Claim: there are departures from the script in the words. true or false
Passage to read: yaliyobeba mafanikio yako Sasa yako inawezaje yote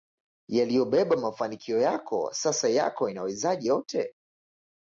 false